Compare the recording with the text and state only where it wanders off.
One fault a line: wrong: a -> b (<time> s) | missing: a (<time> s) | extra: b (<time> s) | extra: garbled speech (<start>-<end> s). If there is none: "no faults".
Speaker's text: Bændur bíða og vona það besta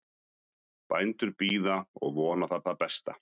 extra: það (2.7 s)